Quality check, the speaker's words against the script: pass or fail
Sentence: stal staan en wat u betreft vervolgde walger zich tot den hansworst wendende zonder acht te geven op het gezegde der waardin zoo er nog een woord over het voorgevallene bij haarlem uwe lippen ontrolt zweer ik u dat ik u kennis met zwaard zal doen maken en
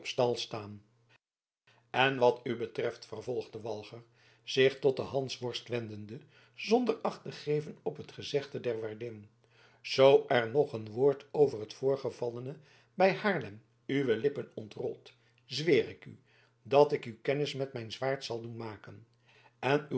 fail